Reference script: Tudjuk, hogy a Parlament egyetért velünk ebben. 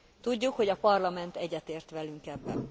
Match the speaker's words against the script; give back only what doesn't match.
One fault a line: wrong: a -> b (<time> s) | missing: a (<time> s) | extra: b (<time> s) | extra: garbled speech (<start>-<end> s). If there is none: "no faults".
no faults